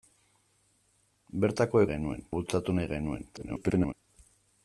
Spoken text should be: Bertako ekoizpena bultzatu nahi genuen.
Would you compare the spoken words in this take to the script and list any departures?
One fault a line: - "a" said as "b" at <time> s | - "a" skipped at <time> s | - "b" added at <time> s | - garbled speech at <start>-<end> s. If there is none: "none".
- "ekoizpena" said as "genuen" at 1.9 s
- garbled speech at 3.3-3.9 s